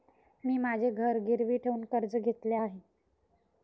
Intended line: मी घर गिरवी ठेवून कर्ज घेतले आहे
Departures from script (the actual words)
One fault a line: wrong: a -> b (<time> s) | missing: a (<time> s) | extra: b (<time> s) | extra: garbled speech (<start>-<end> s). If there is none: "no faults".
extra: माझे (0.6 s)